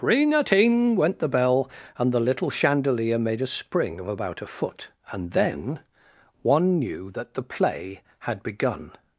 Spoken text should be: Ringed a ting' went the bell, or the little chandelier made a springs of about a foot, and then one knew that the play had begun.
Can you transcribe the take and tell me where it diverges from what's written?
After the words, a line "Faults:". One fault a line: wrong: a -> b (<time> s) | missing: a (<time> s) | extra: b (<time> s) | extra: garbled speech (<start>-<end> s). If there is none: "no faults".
Ring a ting' went the bell, and the little chandelier made a spring of about a foot, and then one knew that the play had begun.
Faults:
wrong: Ringed -> Ring (0.0 s)
wrong: or -> and (2.0 s)
wrong: springs -> spring (3.5 s)